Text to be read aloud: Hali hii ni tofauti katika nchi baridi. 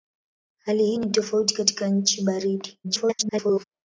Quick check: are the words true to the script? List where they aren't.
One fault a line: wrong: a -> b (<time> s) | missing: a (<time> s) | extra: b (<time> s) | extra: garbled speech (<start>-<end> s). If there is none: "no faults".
extra: garbled speech (2.8-3.6 s)